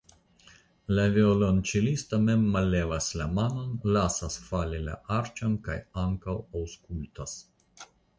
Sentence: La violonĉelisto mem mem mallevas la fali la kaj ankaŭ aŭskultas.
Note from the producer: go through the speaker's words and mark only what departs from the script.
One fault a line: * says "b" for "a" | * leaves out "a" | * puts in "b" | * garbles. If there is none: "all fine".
* leaves out "mem"
* puts in "manon lasas"
* puts in "arĉon"